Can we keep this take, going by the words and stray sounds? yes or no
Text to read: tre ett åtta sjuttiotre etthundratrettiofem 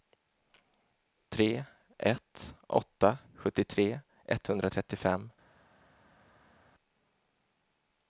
yes